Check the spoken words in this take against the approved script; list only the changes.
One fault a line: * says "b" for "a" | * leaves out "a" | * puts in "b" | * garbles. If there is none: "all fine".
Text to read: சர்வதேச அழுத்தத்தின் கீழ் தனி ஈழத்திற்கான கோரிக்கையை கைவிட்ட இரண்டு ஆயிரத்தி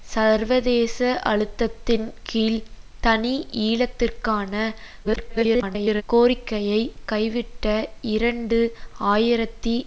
* garbles